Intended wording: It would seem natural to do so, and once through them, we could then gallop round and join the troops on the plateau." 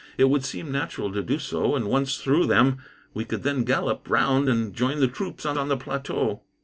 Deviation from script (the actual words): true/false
true